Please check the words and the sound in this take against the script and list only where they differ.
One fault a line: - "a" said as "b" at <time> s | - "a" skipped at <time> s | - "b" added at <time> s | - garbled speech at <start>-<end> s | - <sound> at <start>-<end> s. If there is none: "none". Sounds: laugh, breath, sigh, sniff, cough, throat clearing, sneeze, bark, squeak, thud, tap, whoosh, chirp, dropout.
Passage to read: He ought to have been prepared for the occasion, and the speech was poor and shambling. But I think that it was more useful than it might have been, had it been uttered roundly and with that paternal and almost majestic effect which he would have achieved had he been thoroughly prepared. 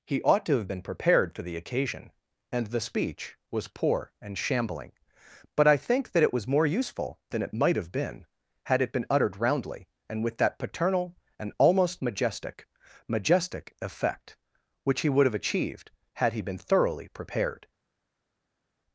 - "majestic" added at 13.1 s